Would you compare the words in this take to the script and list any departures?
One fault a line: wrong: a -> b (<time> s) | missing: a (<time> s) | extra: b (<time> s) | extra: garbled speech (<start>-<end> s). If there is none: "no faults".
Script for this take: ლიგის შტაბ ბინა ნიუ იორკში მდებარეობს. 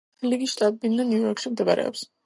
no faults